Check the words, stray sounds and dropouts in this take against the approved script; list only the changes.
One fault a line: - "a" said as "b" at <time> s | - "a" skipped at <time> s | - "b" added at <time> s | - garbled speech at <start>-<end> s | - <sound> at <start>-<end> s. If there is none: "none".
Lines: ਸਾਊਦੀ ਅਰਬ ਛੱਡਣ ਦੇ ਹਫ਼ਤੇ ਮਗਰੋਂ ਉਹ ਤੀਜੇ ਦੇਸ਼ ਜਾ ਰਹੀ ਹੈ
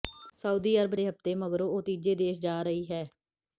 - "ਛੱਡਣ" skipped at 0.9 s